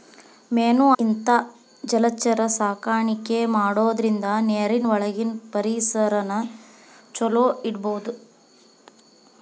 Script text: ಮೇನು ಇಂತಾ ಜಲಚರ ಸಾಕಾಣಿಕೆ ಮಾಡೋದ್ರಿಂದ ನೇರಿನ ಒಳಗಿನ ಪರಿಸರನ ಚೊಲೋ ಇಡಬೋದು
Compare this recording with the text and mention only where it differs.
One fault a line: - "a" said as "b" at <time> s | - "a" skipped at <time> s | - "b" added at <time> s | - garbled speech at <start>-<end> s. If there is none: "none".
none